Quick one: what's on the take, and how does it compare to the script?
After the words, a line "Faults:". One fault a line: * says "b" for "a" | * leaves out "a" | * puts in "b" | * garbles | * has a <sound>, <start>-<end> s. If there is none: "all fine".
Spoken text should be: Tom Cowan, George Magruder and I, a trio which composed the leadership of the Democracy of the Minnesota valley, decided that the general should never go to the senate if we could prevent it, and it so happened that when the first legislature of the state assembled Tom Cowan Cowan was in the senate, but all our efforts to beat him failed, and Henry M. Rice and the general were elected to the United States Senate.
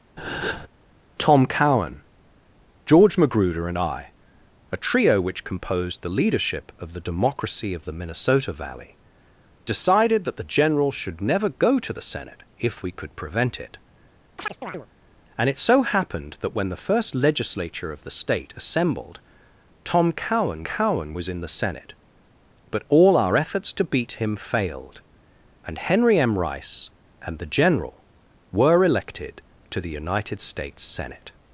Tom Cowan, George Magruder and I, a trio which composed the leadership of the Democracy of the Minnesota valley, decided that the general should never go to the senate if we could prevent it, and it so happened that when the first legislature of the state assembled Tom Cowan Cowan was in the senate, but all our efforts to beat him failed, and Henry M. Rice and the general were elected to the United States Senate.
Faults:
* has a breath, 0.2-0.7 s
* has a chirp, 14.4-14.9 s